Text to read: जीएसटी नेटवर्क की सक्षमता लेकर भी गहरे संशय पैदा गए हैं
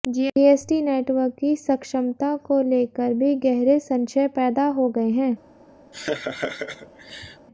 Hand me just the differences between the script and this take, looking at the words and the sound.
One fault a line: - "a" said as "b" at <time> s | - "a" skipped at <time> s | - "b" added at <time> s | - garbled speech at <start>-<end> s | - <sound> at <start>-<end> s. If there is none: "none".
- "को" added at 2.5 s
- "हो" added at 4.7 s
- laugh at 5.9-7.5 s